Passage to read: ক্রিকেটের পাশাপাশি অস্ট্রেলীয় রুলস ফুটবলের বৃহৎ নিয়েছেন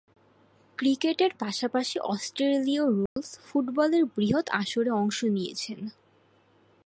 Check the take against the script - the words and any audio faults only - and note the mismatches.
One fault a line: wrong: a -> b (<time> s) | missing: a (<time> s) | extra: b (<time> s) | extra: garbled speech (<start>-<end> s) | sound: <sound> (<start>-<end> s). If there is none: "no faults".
sound: dropout (3.1-3.2 s)
extra: আসরে অংশ (4.5 s)